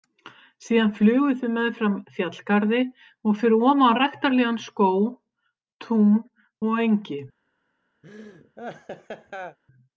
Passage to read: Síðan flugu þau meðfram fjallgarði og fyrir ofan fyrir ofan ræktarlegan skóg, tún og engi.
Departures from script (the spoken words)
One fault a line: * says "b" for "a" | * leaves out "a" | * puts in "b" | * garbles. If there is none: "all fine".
* leaves out "fyrir ofan"